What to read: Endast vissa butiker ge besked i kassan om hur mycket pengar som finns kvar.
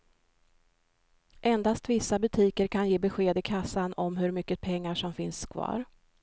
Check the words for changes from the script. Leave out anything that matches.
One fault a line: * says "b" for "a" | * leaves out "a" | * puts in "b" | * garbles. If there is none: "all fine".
* puts in "kan"